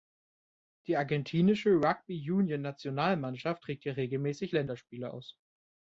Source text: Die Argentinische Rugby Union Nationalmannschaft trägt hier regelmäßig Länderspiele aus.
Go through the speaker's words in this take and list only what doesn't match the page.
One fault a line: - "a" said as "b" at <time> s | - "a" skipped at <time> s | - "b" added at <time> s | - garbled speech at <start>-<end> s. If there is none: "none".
none